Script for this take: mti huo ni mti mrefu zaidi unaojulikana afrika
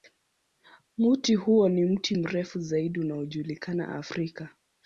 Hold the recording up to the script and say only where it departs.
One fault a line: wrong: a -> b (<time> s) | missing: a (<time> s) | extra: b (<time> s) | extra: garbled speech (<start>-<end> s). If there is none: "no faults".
no faults